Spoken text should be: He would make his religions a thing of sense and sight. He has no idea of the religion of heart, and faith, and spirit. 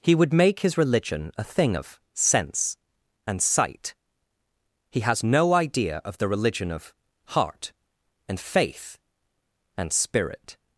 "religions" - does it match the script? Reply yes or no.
no